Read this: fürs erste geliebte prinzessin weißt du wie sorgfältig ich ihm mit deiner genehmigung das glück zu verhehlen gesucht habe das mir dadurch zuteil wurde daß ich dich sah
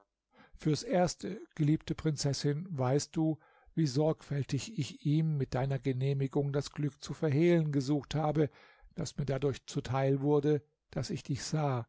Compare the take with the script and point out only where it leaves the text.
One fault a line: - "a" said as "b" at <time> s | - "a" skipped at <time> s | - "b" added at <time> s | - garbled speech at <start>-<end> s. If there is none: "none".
none